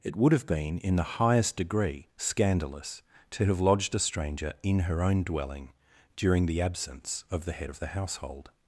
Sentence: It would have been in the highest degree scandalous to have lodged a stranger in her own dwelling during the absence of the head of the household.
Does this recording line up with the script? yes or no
yes